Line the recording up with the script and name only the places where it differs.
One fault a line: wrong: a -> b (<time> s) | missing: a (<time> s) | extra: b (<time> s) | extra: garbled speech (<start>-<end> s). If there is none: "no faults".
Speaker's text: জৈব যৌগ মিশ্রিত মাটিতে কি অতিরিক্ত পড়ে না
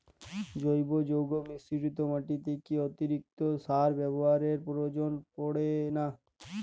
extra: সার ব্যবহারের প্রয়োজন (3.6 s)